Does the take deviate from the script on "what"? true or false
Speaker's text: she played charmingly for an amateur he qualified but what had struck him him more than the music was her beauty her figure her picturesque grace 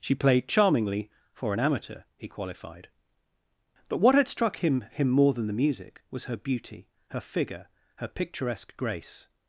false